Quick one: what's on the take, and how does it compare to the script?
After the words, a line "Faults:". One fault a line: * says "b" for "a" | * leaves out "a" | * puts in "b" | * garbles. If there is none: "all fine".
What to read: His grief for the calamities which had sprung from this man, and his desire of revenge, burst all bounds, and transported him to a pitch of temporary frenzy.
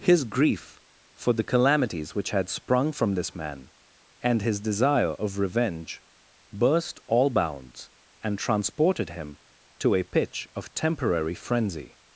His grief for the calamities which had sprung from this man, and his desire of revenge, burst all bounds, and transported him to a pitch of temporary frenzy.
Faults:
all fine